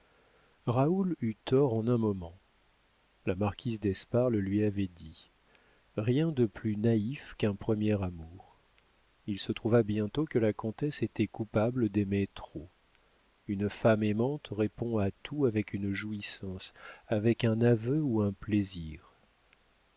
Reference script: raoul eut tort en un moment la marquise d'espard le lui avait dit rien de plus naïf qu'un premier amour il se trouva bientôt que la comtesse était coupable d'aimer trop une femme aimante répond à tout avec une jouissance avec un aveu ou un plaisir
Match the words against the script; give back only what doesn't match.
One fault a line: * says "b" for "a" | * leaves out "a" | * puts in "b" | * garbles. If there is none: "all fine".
all fine